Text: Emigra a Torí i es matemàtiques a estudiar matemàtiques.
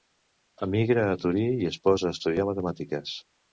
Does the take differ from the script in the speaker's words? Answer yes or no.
yes